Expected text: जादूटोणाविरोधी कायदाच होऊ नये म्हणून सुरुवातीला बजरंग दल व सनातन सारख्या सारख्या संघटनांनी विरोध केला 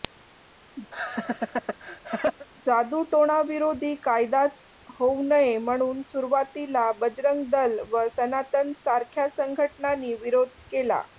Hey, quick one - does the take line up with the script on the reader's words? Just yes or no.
no